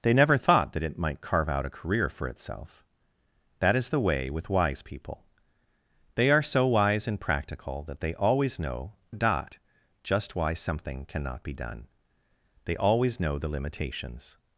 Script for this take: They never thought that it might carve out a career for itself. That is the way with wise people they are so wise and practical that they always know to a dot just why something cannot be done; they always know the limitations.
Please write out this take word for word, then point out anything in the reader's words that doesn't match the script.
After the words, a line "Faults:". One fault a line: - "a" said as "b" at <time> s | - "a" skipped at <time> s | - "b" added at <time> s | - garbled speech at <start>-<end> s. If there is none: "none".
They never thought that it might carve out a career for itself. That is the way with wise people they are so wise and practical that they always know a dot just why something cannot be done; they always know the limitations.
Faults:
- "to" skipped at 8.9 s